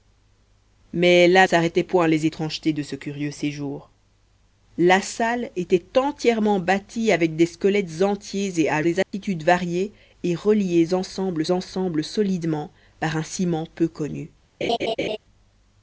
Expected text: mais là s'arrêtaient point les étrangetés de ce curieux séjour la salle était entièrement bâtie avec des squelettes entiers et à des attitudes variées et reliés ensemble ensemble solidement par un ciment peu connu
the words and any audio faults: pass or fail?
fail